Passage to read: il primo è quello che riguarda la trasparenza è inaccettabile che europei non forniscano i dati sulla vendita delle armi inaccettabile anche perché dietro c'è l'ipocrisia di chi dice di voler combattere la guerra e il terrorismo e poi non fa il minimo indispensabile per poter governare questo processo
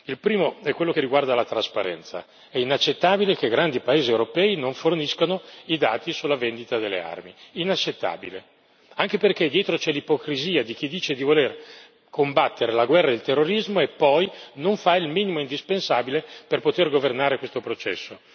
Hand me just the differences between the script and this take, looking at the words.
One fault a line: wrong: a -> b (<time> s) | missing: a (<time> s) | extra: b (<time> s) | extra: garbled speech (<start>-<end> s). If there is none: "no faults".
extra: grandi paesi (3.5 s)